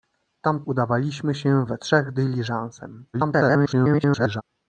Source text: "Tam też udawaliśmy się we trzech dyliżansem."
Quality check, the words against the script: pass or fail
fail